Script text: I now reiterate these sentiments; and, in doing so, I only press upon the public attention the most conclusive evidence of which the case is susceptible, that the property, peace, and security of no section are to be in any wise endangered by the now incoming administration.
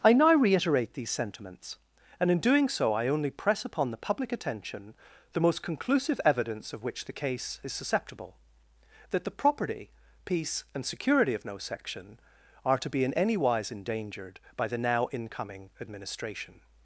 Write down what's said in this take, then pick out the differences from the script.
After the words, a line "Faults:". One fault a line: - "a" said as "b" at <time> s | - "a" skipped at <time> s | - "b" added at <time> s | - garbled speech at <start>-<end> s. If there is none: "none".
I now reiterate these sentiments; and, in doing so, I only press upon the public attention the most conclusive evidence of which the case is susceptible, that the property, peace, and security of no section are to be in any wise endangered by the now incoming administration.
Faults:
none